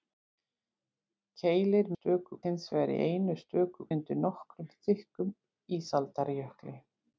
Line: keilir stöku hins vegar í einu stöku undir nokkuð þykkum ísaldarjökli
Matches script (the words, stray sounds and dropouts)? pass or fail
pass